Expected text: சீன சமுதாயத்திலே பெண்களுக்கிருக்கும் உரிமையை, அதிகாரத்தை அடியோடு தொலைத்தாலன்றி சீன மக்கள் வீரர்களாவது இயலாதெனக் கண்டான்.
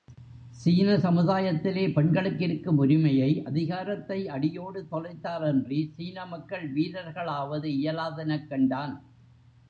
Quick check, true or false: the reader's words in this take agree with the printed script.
true